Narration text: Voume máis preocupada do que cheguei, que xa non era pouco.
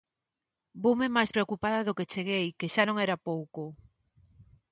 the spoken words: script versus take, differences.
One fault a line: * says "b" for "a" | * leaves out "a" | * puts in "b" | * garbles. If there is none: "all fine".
all fine